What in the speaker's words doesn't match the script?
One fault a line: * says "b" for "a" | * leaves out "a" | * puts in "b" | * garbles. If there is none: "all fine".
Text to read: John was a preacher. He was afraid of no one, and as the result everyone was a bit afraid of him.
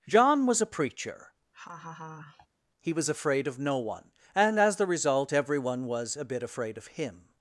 all fine